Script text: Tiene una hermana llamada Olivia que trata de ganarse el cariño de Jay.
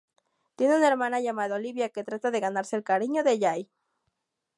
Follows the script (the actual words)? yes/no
yes